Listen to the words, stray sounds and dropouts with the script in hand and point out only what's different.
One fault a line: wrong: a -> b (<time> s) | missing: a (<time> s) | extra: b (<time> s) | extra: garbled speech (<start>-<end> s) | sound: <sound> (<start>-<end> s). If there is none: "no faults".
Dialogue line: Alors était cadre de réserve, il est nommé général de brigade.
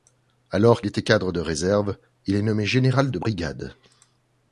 no faults